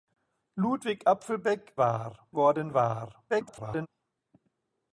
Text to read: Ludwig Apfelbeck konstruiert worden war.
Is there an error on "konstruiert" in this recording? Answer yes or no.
yes